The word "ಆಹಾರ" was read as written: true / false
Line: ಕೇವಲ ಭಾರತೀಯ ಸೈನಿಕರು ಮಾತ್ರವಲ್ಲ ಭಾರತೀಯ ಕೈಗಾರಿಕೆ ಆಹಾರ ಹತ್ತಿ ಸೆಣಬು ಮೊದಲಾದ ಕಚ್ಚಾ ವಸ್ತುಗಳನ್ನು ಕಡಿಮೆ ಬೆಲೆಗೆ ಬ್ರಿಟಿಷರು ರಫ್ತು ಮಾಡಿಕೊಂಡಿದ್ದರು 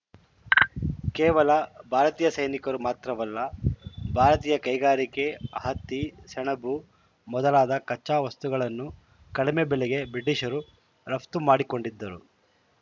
false